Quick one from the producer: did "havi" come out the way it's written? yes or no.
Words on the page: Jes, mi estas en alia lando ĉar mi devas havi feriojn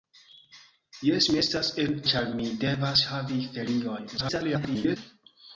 yes